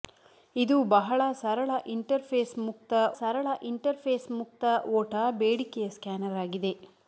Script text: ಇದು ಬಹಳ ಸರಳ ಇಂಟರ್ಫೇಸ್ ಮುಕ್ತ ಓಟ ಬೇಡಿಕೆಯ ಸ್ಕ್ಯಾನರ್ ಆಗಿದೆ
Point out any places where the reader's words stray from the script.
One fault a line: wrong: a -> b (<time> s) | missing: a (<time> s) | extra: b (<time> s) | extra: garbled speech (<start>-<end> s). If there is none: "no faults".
extra: ಸರಳ ಇಂಟರ್ಫೇಸ್ ಮುಕ್ತ (3.2 s)